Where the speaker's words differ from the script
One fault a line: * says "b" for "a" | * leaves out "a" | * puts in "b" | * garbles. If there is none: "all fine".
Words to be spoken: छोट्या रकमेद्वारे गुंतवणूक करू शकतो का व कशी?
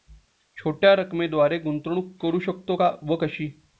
all fine